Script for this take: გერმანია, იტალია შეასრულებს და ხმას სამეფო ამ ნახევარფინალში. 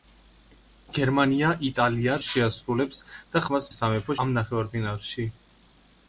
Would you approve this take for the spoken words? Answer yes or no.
yes